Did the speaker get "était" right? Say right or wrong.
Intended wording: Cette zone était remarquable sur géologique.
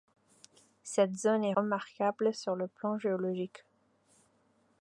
wrong